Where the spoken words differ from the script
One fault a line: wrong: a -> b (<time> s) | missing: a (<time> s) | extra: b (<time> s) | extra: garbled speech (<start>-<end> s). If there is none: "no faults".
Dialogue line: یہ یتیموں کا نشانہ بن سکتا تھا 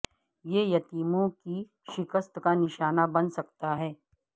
extra: کی شکست (1.3 s)
wrong: تھا -> ہے (3.8 s)